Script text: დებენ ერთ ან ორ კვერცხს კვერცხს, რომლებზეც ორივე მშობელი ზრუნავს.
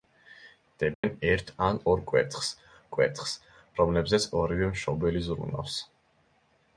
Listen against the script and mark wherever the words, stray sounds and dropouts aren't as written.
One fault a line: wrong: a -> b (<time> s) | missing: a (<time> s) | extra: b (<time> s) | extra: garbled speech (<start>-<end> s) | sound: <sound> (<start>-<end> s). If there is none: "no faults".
sound: dropout (0.9-1.0 s)